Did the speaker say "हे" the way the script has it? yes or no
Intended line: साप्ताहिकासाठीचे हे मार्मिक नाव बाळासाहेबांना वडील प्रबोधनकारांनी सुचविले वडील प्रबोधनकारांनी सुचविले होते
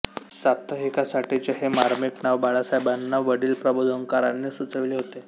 yes